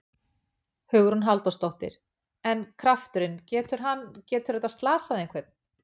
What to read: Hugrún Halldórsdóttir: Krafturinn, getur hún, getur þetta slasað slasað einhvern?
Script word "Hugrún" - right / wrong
right